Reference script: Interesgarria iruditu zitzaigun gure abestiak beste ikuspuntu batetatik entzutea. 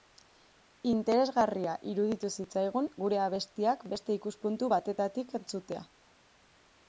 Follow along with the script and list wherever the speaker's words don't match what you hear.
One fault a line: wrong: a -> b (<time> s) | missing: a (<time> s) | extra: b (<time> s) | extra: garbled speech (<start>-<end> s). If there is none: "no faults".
no faults